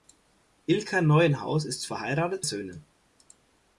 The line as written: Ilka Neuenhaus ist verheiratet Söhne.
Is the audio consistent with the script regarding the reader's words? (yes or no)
yes